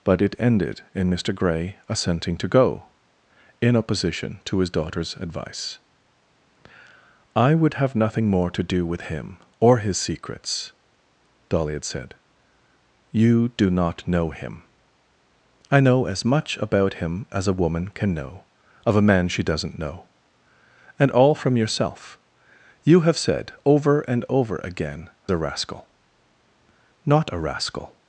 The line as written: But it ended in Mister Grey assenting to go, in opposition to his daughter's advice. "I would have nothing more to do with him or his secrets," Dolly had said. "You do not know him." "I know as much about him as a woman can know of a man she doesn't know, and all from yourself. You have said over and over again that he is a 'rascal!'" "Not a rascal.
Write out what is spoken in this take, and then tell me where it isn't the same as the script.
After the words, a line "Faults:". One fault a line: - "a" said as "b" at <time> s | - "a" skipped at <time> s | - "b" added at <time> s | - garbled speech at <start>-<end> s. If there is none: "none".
But it ended in Mister Grey assenting to go, in opposition to his daughter's advice. "I would have nothing more to do with him or his secrets," Dolly had said. "You do not know him." "I know as much about him as a woman can know of a man she doesn't know, and all from yourself. You have said over and over again a 'rascal!'" "Not a rascal.
Faults:
- "that he is" skipped at 25.1 s